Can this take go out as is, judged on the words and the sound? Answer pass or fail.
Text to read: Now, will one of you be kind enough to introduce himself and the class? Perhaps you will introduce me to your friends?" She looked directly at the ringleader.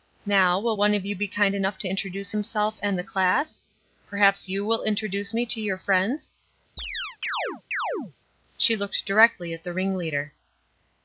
fail